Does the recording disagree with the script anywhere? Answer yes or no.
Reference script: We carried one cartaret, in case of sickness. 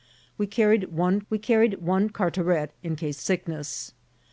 yes